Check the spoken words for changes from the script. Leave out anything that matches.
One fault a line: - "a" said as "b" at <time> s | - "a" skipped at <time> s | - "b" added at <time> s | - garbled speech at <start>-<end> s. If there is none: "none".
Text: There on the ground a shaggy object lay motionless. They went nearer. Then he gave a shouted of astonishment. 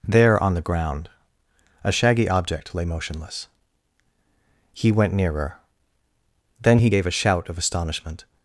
- "They" said as "He" at 4.7 s
- "shouted" said as "shout" at 7.1 s